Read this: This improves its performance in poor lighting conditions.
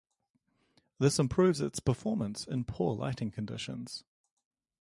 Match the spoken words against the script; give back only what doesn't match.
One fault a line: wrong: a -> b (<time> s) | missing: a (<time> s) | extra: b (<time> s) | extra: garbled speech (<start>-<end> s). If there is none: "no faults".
no faults